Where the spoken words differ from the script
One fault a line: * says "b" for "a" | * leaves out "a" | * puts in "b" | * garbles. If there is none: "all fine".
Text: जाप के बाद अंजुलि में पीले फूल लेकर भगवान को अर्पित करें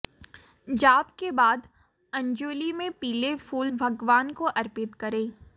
* leaves out "लेकर"